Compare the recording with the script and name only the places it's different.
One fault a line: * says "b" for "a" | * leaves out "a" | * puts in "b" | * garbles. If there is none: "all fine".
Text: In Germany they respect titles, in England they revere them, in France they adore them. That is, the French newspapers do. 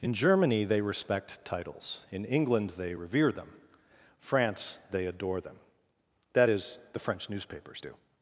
* leaves out "in"